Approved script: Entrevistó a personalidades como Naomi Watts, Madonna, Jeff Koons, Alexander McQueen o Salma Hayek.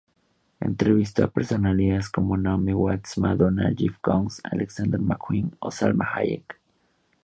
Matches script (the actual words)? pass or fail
pass